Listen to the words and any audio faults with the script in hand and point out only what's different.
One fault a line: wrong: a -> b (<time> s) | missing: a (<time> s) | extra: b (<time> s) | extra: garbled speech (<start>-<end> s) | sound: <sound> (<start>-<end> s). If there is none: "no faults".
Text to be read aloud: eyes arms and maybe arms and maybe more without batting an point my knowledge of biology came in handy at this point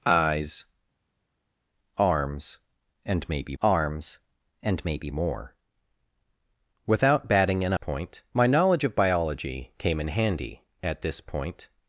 no faults